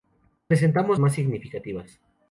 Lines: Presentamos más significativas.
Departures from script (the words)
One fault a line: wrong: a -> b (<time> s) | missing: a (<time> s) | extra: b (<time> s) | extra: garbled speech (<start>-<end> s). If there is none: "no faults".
no faults